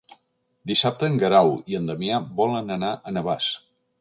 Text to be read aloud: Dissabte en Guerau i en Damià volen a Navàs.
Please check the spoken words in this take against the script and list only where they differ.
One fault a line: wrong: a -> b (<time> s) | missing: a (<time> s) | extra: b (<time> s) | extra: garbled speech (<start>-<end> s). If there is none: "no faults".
extra: anar (2.8 s)